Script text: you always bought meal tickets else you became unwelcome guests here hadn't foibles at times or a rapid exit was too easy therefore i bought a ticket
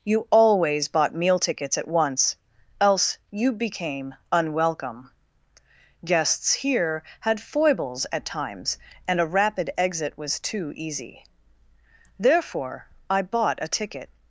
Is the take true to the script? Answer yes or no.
no